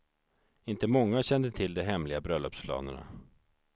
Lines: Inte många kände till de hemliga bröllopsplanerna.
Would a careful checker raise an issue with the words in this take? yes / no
no